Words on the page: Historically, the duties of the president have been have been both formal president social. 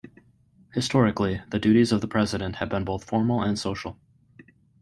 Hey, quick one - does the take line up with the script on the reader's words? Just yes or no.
no